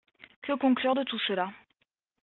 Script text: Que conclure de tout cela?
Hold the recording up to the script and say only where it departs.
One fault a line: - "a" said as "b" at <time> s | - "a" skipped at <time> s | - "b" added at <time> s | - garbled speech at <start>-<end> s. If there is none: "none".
none